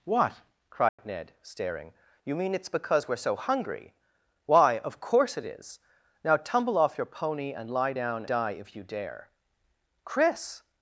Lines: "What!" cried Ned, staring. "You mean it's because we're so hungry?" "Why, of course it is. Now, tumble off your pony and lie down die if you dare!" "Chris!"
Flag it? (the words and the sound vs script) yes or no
yes